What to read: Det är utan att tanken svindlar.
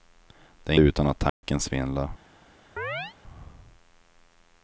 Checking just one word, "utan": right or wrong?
right